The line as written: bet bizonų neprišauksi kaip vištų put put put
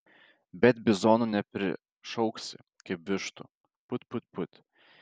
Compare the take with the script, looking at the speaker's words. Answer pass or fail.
pass